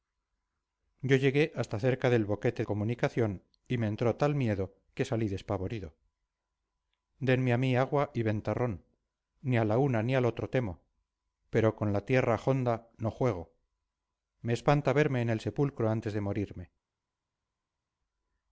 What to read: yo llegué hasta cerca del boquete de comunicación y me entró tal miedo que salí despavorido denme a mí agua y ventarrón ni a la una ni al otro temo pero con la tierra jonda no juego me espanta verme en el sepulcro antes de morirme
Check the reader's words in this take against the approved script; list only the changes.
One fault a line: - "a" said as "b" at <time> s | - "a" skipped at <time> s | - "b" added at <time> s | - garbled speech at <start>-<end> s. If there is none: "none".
- "de" skipped at 2.6 s